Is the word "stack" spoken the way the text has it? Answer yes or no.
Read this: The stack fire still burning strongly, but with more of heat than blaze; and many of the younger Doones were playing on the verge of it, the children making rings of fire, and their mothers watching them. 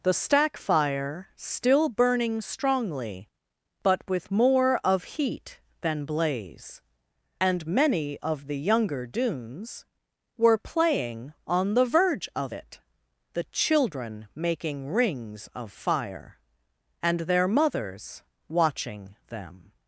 yes